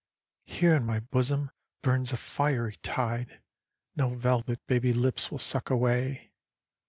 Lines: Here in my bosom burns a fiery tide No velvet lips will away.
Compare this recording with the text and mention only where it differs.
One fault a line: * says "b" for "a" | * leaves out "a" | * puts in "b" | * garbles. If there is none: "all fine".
* puts in "baby"
* puts in "suck"